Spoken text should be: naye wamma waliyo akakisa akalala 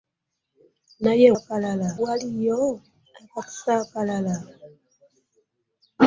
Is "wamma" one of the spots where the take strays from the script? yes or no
yes